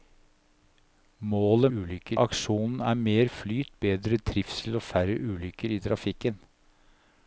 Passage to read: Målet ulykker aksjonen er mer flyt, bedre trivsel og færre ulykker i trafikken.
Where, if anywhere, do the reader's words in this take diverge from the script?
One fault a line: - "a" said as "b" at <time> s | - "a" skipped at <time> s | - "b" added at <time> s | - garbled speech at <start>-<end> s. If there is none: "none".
none